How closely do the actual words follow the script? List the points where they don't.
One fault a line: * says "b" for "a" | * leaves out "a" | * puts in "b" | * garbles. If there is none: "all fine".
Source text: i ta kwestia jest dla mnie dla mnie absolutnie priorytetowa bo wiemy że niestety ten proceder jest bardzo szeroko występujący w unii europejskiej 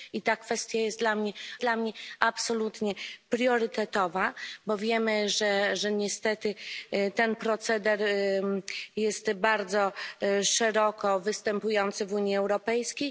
all fine